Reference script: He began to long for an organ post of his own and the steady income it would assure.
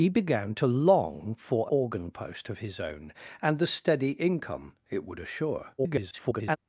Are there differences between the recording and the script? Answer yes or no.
yes